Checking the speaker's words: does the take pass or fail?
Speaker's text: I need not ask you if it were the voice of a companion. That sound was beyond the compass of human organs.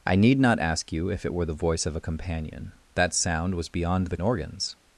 fail